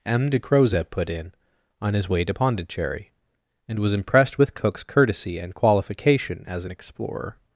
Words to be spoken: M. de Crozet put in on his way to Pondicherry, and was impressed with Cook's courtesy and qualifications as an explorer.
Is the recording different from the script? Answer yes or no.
yes